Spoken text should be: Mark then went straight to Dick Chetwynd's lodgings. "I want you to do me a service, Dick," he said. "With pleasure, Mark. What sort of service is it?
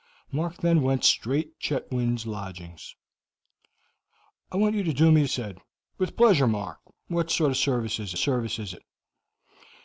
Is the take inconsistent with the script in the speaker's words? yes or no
yes